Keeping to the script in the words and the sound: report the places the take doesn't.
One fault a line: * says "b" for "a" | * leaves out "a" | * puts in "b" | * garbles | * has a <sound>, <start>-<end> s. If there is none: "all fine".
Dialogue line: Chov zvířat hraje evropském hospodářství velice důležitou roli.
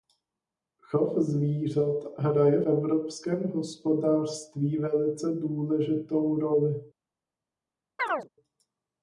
* has a chirp, 8.0-8.3 s